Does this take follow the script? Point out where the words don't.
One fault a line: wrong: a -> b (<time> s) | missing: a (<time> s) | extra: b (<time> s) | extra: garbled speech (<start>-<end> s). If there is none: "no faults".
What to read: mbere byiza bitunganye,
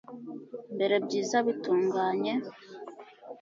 no faults